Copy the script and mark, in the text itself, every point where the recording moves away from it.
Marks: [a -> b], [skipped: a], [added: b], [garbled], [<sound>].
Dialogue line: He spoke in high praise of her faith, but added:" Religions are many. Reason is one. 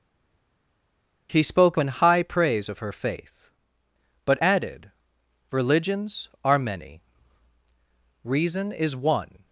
He spoke in high praise of her faith, but added:" Religions are many. Reason is one.